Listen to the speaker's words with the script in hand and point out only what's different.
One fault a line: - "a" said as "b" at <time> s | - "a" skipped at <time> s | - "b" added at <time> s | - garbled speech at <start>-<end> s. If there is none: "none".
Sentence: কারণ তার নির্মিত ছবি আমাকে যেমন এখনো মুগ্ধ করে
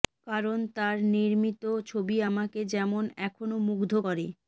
none